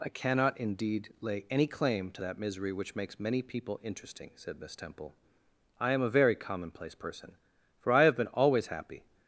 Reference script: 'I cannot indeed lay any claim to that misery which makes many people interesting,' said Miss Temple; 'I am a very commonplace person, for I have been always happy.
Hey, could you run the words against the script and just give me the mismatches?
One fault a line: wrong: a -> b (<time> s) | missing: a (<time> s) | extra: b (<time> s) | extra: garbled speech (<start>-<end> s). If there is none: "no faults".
no faults